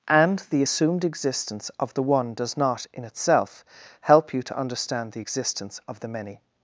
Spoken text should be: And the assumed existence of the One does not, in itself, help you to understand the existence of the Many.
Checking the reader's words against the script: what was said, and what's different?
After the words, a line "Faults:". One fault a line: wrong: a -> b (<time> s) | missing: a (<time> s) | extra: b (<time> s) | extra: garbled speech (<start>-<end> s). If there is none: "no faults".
And the assumed existence of the One does not, in itself, help you to understand the existence of the Many.
Faults:
no faults